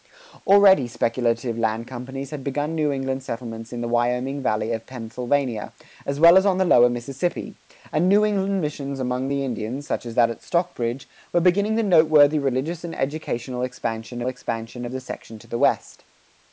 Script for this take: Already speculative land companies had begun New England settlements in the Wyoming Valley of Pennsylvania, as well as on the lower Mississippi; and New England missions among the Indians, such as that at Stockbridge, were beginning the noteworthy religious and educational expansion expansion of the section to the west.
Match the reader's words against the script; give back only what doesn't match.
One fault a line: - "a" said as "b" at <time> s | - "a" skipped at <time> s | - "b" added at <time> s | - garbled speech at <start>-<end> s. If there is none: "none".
none